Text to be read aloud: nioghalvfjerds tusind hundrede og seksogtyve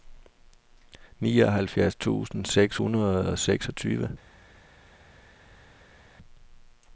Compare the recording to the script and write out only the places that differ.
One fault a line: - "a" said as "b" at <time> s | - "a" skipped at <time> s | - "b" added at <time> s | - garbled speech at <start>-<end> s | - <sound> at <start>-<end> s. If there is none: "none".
- "seks" added at 2.5 s